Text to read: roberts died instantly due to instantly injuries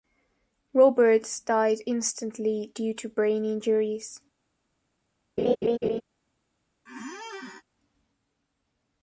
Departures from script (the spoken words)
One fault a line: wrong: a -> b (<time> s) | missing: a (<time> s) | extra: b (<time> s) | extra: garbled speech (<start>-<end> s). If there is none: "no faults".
wrong: instantly -> brain (3.1 s)